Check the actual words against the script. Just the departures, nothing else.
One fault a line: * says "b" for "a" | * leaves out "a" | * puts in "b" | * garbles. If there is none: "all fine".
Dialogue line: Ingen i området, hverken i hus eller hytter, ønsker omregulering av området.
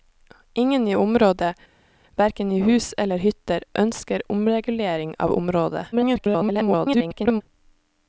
* garbles